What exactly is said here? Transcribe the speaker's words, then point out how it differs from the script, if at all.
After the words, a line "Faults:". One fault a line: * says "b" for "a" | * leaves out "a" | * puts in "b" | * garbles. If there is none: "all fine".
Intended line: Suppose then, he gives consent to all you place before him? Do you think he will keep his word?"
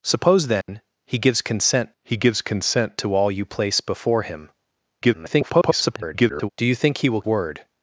Suppose then, he gives consent he gives consent to all you place before him? [garbled] Do you think he will word?"
Faults:
* puts in "he gives consent"
* garbles
* leaves out "keep his"